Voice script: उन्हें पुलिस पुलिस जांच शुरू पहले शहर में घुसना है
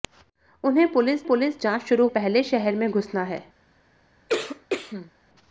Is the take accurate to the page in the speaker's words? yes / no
yes